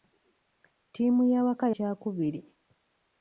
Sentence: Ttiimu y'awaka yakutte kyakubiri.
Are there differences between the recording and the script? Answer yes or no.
yes